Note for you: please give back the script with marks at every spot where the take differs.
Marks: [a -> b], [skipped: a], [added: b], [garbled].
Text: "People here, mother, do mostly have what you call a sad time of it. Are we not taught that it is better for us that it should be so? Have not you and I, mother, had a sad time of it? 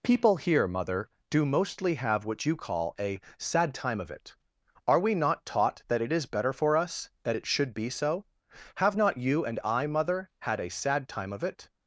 "People here, mother, do mostly have what you call a sad time of it. Are we not taught that it is better for us that it should be so? Have not you and I, mother, had a sad time of it?